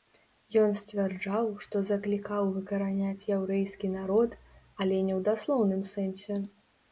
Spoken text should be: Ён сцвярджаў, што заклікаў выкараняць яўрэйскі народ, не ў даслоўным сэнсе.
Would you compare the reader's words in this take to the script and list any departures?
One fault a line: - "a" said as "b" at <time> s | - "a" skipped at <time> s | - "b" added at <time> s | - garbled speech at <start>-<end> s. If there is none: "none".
- "але" added at 4.8 s